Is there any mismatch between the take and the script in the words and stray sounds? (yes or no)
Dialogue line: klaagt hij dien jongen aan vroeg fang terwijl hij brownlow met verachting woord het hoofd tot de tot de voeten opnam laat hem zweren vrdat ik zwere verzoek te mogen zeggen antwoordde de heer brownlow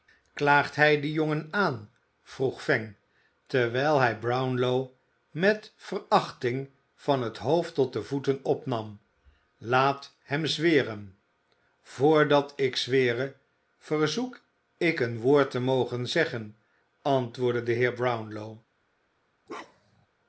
yes